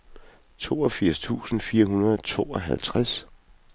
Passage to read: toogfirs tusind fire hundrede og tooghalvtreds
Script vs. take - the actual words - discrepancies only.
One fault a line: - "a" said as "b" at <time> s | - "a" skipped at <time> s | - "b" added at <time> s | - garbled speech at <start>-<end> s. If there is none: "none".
none